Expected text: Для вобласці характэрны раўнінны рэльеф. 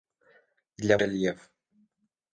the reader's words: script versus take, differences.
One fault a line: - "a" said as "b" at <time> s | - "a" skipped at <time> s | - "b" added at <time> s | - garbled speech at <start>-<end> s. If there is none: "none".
- "вобласці характэрны раўнінны" skipped at 1.0 s